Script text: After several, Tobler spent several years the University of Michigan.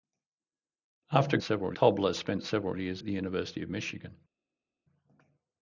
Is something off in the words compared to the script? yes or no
no